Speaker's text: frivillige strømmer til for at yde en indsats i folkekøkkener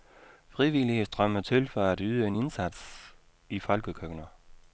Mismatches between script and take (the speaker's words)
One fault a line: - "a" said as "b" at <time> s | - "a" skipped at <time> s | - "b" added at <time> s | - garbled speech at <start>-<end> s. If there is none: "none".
none